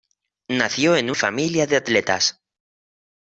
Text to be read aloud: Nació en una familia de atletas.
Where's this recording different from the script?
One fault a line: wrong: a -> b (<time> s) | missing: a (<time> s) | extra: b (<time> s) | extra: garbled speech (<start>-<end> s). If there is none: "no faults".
missing: una (1.1 s)